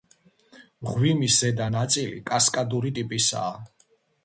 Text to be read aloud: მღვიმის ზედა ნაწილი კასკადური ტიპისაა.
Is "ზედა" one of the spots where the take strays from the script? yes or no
no